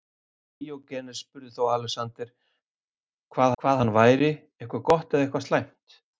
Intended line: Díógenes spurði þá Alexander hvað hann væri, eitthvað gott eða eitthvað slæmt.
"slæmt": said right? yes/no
yes